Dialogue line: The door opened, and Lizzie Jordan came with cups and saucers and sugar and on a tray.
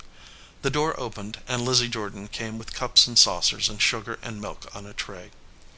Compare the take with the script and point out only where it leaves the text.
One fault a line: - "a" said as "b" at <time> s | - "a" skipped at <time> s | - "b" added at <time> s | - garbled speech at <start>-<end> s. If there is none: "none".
- "milk" added at 4.4 s